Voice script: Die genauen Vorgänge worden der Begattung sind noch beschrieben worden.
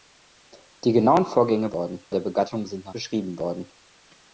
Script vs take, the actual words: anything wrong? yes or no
no